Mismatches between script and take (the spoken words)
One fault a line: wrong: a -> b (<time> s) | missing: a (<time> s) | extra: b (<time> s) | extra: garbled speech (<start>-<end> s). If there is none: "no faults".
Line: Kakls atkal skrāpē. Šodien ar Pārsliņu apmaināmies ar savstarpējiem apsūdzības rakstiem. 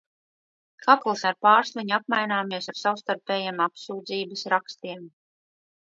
missing: atkal skrāpē Šodien (1.2 s)